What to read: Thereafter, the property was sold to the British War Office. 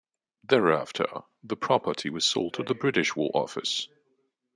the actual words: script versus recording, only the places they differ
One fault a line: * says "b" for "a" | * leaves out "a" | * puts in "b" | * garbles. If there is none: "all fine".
all fine